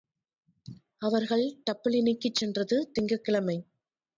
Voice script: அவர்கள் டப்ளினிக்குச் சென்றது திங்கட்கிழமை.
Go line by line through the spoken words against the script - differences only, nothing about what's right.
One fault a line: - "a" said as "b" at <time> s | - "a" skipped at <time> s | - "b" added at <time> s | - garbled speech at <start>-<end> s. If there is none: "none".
none